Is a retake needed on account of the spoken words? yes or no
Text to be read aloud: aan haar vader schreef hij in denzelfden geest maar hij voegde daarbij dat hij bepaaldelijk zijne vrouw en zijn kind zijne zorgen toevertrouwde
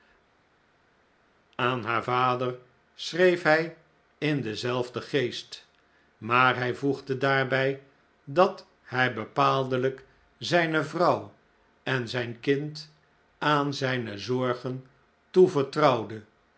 yes